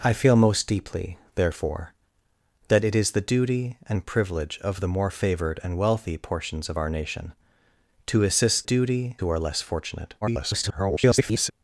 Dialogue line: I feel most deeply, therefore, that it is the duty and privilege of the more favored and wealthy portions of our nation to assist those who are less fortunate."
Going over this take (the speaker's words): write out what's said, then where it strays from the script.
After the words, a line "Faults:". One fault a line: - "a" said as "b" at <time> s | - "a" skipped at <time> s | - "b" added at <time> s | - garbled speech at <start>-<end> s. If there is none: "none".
I feel most deeply, therefore, that it is the duty and privilege of the more favored and wealthy portions of our nation to assist duty who are less fortunate." [garbled]
Faults:
- "those" said as "duty" at 8.6 s
- garbled speech at 10.2-11.5 s